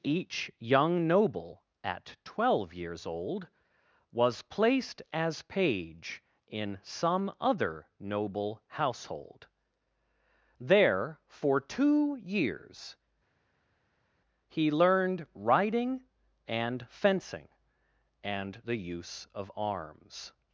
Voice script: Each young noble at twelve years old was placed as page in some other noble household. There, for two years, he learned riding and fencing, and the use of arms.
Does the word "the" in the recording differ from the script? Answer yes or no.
no